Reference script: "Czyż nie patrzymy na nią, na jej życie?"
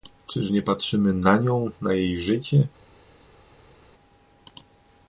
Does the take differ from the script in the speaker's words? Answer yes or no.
no